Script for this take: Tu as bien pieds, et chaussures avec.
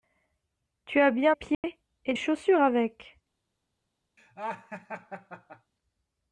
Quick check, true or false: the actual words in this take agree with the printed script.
true